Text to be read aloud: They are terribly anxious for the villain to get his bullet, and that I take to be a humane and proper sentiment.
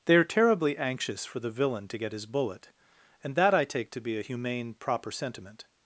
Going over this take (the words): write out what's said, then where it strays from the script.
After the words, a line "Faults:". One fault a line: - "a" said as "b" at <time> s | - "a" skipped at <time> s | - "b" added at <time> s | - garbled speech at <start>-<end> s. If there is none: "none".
They are terribly anxious for the villain to get his bullet, and that I take to be a humane proper sentiment.
Faults:
- "and" skipped at 4.7 s